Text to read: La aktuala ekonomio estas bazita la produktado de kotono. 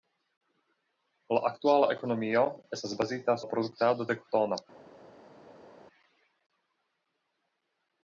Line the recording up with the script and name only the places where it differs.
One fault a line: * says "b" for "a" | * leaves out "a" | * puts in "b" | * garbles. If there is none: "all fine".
all fine